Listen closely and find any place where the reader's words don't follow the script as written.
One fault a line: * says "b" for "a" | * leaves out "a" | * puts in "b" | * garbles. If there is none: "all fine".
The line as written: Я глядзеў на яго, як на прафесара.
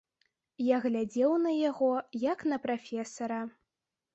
all fine